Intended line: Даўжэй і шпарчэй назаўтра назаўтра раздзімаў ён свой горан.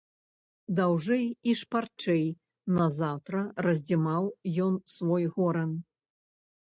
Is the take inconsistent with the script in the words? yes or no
yes